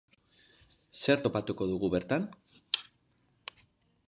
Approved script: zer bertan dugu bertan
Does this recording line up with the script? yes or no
no